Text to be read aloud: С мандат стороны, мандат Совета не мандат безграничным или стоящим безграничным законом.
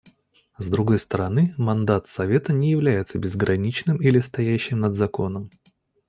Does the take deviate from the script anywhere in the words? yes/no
yes